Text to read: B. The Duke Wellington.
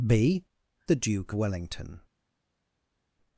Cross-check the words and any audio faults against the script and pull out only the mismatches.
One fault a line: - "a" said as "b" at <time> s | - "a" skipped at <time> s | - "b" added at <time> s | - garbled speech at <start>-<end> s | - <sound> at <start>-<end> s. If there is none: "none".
none